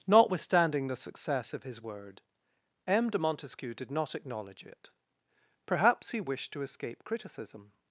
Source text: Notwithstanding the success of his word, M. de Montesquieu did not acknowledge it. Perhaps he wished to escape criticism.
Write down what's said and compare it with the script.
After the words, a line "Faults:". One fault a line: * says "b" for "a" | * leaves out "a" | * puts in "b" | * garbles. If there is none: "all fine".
Notwithstanding the success of his word, M. de Montesquieu did not acknowledge it. Perhaps he wished to escape criticism.
Faults:
all fine